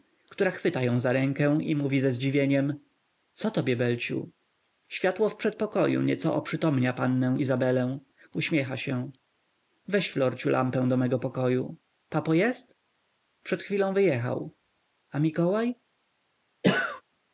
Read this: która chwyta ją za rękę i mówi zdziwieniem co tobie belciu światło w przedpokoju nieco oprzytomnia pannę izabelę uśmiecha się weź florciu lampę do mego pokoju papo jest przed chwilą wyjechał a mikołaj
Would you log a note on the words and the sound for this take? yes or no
yes